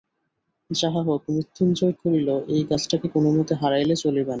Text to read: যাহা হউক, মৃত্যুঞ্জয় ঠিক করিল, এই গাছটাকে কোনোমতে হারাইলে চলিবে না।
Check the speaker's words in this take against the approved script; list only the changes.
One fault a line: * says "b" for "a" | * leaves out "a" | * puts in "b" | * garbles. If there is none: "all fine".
* leaves out "ঠিক"